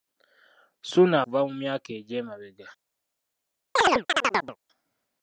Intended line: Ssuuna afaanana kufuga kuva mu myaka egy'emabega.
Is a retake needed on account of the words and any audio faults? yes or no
yes